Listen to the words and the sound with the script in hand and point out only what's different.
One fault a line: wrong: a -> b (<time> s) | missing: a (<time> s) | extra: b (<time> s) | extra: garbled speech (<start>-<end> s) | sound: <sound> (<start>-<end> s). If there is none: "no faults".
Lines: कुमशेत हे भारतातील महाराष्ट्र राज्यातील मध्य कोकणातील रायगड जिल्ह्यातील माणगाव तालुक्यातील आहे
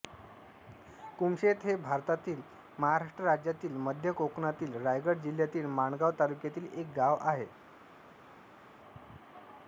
extra: एक गाव (6.7 s)